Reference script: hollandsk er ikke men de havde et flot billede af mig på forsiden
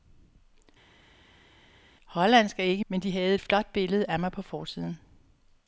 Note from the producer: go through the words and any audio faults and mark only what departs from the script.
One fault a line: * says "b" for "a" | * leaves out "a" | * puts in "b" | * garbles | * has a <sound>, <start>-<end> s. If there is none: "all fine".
all fine